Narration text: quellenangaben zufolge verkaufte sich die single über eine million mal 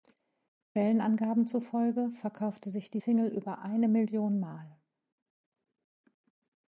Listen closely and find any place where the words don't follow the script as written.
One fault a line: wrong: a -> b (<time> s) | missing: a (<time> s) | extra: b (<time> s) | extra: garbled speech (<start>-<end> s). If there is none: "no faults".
no faults